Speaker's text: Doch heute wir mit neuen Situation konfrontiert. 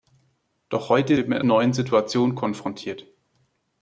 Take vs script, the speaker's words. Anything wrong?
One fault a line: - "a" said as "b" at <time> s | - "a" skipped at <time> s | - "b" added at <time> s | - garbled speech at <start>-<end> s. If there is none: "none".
none